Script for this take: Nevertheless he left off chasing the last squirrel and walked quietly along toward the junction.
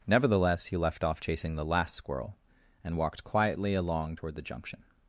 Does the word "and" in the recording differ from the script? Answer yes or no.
no